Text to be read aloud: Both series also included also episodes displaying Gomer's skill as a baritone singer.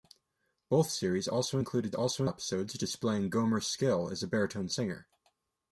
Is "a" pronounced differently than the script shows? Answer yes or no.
no